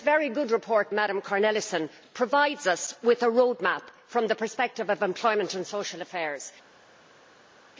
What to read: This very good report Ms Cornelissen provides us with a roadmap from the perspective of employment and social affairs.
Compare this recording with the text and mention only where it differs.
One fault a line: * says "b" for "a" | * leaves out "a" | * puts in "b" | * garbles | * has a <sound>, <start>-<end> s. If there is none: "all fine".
all fine